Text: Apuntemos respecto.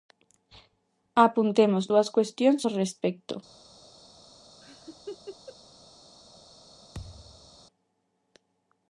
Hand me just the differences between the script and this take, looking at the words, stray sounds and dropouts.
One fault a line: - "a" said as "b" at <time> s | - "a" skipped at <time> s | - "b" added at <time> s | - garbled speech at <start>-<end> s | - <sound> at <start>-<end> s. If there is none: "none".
- "dúas cuestións ao" added at 1.9 s
- laugh at 4.6-5.6 s
- thud at 6.9-7.6 s